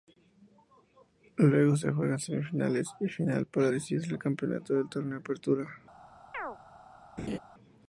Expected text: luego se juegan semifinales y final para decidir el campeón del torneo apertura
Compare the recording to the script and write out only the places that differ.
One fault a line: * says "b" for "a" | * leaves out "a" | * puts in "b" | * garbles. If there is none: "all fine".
all fine